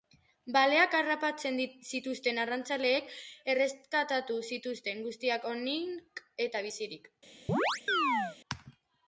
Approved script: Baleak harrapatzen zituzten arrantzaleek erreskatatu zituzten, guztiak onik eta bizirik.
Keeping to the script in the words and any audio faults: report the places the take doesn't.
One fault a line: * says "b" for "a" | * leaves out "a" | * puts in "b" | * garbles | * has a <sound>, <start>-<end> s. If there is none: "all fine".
* has a chirp, 7.5-8.4 s